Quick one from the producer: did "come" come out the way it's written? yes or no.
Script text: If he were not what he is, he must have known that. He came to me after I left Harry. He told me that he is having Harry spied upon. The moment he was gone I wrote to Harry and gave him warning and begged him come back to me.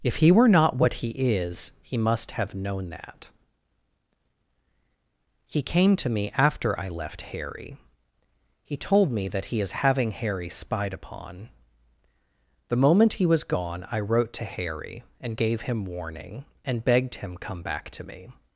yes